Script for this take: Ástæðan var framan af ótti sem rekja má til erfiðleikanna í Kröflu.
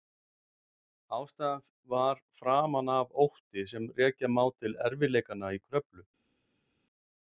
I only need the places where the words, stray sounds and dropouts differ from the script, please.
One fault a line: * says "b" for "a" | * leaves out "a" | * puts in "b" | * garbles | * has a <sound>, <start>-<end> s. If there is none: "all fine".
all fine